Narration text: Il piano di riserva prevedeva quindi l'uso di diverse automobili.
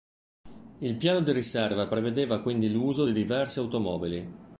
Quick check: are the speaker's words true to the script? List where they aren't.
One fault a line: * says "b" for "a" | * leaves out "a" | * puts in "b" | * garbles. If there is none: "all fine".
all fine